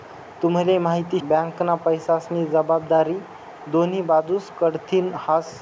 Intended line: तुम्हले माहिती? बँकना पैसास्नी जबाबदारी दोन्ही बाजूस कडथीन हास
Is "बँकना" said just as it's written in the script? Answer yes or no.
yes